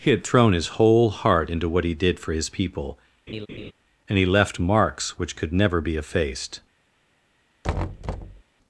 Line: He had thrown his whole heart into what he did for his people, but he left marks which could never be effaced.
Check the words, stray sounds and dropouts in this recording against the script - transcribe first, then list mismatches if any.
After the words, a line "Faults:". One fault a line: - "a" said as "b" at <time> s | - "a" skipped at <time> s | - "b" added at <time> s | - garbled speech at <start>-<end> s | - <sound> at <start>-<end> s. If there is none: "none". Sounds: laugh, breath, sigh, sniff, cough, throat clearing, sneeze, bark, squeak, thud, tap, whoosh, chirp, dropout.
He had thrown his whole heart into what he did for his people, and he left marks which could never be effaced.
Faults:
- laugh at 3.3-3.7 s
- "but" said as "and" at 4.1 s
- thud at 7.6-8.4 s